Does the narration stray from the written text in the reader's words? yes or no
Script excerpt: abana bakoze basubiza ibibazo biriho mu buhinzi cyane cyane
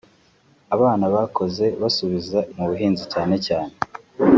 yes